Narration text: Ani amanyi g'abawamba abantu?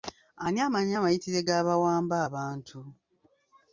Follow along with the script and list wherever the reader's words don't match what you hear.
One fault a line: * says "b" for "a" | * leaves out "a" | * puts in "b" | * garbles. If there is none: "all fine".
* puts in "amayitire"